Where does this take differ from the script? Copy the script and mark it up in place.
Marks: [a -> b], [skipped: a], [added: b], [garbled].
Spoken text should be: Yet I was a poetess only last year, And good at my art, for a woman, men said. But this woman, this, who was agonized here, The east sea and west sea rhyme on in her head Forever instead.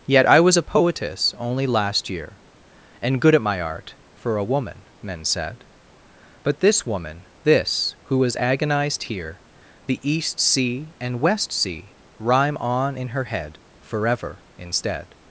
Yet I was a poetess only last year, And good at my art, for a woman, men said. But this woman, this, who was agonized here, The east sea and west sea rhyme on in her head Forever instead.